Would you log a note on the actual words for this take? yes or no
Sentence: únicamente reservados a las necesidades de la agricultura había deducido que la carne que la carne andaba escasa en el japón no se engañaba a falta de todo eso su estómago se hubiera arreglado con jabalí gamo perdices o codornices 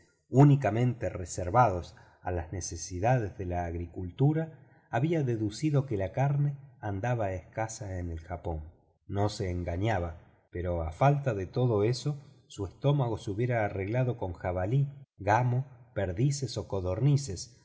yes